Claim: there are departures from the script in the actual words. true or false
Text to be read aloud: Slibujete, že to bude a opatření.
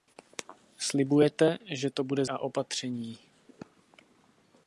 false